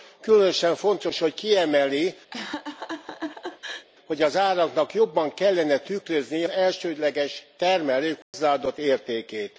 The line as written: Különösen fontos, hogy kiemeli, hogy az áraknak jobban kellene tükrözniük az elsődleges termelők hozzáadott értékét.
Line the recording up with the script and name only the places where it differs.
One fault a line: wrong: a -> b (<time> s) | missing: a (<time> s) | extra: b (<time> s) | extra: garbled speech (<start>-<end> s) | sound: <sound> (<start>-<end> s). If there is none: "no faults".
sound: laugh (2.3-3.9 s)
missing: az (6.5 s)
sound: dropout (8.2-8.3 s)